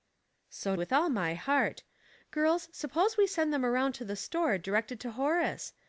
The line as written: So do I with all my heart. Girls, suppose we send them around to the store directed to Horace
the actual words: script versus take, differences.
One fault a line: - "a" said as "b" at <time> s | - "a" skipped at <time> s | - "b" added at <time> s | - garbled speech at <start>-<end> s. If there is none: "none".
- "do I" skipped at 0.8 s